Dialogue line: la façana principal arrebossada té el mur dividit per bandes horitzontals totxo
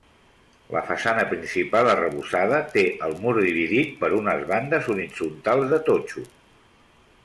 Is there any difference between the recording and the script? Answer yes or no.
yes